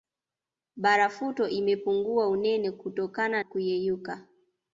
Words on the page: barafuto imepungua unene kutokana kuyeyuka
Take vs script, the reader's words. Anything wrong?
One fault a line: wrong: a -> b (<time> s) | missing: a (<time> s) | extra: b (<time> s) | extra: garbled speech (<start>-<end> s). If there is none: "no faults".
no faults